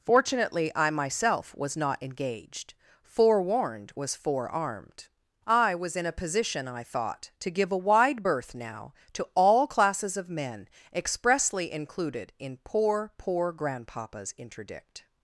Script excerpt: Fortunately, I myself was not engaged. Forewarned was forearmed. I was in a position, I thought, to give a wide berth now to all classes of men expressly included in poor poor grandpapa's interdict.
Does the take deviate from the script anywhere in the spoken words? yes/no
no